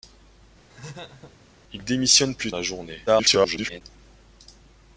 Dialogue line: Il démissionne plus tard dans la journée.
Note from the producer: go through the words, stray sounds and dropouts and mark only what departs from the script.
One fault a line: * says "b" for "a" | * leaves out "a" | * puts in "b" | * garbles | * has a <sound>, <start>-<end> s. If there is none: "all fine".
* has a laugh, 0.7-1.4 s
* leaves out "tard dans"
* garbles